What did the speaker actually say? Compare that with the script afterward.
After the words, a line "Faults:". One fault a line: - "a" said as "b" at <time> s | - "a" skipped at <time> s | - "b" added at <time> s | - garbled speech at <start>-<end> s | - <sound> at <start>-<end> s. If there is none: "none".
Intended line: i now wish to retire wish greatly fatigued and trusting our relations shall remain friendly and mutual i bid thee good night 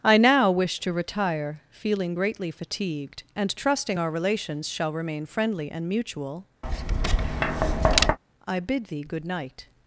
i now wish to retire feeling greatly fatigued and trusting our relations shall remain friendly and mutual i bid thee good night
Faults:
- "wish" said as "feeling" at 1.7 s
- tap at 6.6-8.2 s